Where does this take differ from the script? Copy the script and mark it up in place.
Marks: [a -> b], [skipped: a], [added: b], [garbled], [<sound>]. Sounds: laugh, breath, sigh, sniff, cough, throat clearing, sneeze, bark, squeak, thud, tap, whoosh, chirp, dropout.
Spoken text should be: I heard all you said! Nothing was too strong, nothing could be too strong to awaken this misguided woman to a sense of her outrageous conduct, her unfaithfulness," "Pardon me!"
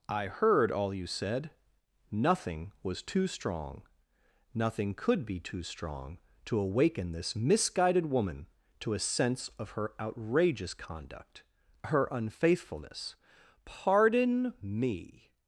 I heard all you said! Nothing was too strong, nothing could be too strong to awaken this misguided woman to a sense of her outrageous conduct, her unfaithfulness," "Pardon me!"